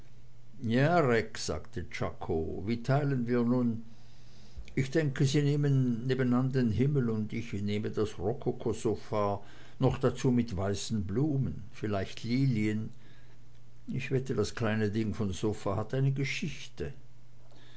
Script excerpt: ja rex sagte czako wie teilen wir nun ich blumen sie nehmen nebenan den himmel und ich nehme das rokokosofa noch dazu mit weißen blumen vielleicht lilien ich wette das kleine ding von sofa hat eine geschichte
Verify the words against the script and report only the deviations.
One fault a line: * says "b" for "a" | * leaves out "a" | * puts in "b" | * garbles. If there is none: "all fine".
* says "denke" for "blumen"